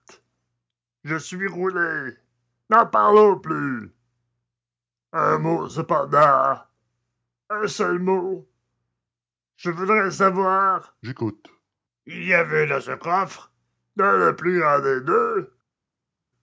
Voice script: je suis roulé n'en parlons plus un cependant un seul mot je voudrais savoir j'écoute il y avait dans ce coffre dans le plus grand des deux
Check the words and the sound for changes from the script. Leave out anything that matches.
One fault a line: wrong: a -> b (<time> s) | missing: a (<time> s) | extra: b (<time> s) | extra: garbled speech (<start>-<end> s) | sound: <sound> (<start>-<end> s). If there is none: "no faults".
extra: mot (5.4 s)